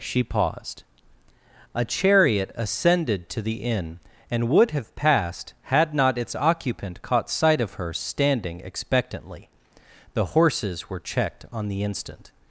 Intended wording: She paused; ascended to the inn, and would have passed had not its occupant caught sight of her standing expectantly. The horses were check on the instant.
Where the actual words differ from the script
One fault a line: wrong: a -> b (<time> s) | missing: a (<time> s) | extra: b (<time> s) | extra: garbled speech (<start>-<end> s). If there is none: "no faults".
extra: a chariot (1.8 s)
wrong: check -> checked (11.0 s)